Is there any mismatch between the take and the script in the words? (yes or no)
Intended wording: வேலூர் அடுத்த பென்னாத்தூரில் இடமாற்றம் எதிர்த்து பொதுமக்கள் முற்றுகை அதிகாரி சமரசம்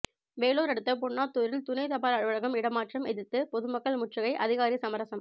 yes